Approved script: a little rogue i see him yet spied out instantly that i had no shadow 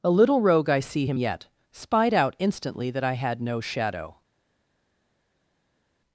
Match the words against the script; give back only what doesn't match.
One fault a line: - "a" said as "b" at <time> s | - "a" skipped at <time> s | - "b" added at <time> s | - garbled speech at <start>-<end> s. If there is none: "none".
none